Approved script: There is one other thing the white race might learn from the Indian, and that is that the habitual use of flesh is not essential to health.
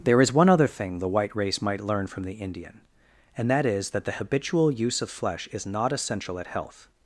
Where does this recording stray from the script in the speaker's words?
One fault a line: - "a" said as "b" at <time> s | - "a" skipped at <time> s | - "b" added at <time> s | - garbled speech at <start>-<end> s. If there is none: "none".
- "to" said as "at" at 6.4 s